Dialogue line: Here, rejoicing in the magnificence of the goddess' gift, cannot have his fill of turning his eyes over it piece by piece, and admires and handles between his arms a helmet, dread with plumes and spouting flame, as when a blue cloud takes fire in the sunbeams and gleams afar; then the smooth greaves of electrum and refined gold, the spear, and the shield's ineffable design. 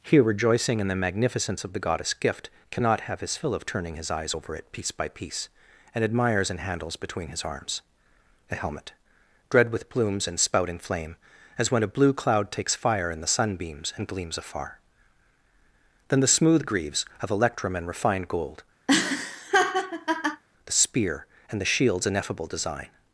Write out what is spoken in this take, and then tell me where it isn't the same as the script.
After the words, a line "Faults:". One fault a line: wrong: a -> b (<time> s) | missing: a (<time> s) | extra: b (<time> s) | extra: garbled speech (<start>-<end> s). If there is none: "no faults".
Here, rejoicing in the magnificence of the goddess' gift, cannot have his fill of turning his eyes over it piece by piece, and admires and handles between his arms a helmet, dread with plumes and spouting flame, as when a blue cloud takes fire in the sunbeams and gleams afar; then the smooth greaves of electrum and refined gold, the spear, and the shield's ineffable design.
Faults:
no faults